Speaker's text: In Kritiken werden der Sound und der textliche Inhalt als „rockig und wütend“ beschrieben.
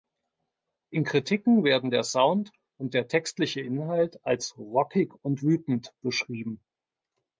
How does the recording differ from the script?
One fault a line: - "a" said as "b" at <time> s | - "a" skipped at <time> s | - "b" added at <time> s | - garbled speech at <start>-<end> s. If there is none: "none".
none